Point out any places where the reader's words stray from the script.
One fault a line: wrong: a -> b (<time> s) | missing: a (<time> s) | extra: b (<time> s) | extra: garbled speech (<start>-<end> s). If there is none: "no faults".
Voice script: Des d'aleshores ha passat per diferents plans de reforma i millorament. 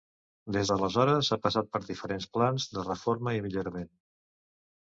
no faults